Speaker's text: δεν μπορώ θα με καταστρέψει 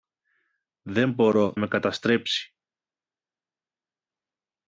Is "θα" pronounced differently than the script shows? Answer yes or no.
yes